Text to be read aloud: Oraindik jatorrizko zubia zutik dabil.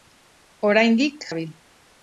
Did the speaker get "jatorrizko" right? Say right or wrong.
wrong